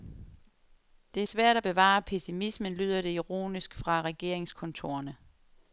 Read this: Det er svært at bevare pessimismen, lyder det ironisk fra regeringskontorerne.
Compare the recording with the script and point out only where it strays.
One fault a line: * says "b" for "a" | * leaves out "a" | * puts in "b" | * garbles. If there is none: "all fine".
all fine